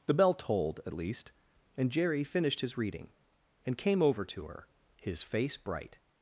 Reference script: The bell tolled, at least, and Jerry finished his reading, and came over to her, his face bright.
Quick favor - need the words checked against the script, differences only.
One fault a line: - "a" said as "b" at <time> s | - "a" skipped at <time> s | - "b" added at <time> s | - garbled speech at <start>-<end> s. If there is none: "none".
none